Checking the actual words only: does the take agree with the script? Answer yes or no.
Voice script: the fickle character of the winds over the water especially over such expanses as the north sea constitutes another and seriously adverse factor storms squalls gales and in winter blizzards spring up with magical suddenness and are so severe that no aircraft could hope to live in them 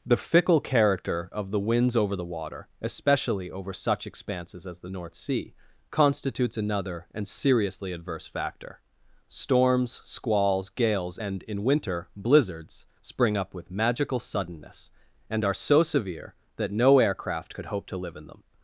yes